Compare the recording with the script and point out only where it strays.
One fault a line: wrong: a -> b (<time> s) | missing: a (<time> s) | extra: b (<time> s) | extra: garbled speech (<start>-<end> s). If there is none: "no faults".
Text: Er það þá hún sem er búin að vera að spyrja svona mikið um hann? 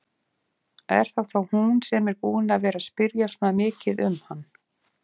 no faults